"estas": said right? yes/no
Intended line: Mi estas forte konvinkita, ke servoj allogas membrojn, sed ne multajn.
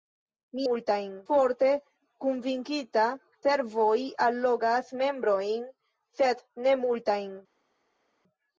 no